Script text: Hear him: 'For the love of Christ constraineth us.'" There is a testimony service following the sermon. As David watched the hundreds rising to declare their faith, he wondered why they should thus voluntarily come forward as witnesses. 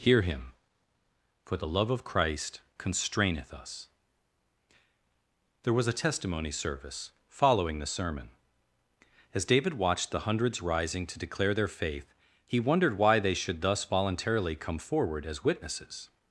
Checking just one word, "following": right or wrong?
right